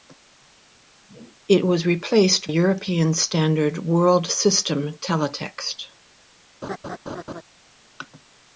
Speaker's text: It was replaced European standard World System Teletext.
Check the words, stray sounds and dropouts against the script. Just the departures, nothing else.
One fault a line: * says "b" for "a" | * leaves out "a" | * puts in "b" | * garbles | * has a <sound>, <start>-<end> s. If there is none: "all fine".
* has a laugh, 6.6-7.4 s